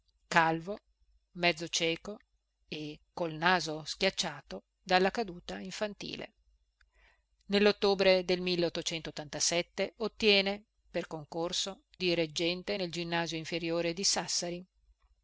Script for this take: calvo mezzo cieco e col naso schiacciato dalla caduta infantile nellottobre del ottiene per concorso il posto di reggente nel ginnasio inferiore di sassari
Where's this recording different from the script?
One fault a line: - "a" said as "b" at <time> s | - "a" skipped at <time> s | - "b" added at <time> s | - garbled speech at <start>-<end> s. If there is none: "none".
- "il posto" skipped at 11.8 s